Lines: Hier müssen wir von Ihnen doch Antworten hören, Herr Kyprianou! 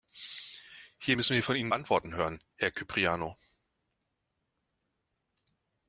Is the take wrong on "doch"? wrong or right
wrong